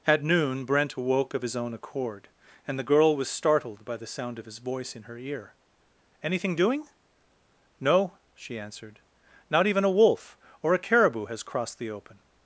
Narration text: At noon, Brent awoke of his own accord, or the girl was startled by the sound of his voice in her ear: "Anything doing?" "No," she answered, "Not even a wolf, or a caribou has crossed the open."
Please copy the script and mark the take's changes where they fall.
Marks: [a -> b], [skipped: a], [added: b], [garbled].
At noon, Brent awoke of his own accord, [or -> and] the girl was startled by the sound of his voice in her ear: "Anything doing?" "No," she answered, "Not even a wolf, or a caribou has crossed the open."